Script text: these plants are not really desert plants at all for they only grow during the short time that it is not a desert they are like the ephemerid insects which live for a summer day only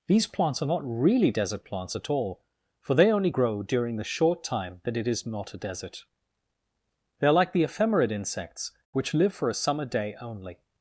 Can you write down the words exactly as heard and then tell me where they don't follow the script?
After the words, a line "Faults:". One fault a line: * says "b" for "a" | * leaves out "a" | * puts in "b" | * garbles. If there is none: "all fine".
these plants are not really desert plants at all for they only grow during the short time that it is not a desert they are like the ephemerid insects which live for a summer day only
Faults:
all fine